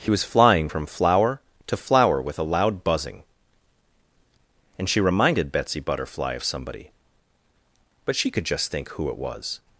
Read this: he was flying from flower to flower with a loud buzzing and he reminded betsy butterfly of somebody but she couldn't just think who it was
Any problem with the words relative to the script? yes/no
yes